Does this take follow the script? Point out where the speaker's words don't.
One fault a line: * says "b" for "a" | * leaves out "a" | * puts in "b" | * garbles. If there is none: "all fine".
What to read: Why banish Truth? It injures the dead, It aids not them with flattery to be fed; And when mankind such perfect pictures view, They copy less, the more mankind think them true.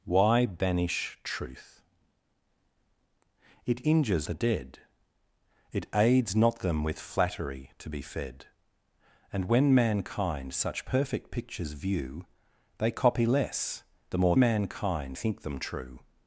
all fine